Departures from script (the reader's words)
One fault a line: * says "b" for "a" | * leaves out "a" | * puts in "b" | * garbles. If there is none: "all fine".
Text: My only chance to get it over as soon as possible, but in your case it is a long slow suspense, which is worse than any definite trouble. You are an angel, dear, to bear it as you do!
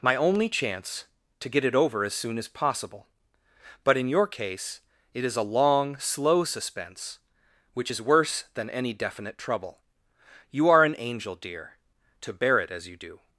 all fine